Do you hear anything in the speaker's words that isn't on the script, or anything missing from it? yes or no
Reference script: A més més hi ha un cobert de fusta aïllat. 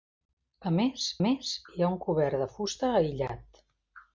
no